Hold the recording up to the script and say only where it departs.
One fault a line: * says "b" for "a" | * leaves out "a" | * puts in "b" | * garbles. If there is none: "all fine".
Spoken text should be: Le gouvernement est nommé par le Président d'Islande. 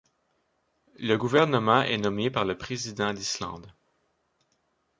all fine